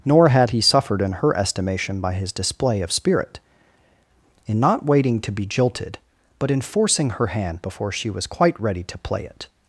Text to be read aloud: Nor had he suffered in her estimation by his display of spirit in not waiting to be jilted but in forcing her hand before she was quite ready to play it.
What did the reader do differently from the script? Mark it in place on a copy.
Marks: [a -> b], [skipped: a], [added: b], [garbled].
Nor had he suffered in her estimation by his display of spirit in not waiting to be jilted but in forcing her hand before she was quite ready to play it.